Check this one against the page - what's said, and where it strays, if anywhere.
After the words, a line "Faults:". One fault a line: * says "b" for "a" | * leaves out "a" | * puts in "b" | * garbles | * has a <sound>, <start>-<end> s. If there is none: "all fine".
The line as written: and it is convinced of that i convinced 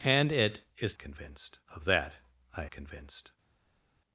and it is convinced of that i convinced
Faults:
all fine